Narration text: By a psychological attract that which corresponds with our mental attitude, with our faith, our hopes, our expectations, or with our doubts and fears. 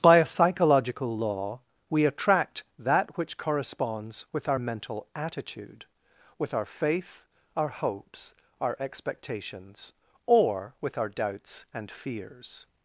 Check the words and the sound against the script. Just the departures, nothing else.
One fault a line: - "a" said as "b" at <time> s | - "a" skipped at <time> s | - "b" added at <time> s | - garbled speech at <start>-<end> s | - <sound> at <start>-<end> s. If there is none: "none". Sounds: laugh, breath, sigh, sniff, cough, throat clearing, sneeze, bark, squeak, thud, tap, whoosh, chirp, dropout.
- "law we" added at 1.1 s